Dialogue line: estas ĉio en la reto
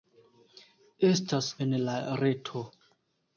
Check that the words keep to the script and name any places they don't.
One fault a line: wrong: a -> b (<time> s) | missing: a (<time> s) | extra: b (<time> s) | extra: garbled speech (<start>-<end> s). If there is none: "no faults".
missing: ĉio (1.5 s)